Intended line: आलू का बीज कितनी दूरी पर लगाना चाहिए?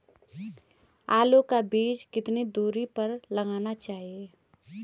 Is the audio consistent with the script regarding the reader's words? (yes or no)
yes